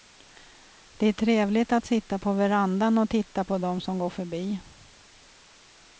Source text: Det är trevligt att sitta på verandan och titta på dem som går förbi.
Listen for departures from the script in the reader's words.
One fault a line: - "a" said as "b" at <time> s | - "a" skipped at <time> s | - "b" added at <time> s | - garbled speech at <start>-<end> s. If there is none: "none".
none